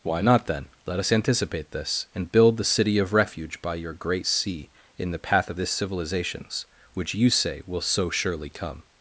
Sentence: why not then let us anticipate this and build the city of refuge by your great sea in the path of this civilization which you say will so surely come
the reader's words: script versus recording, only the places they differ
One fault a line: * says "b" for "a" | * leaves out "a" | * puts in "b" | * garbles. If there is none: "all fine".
* says "civilizations" for "civilization"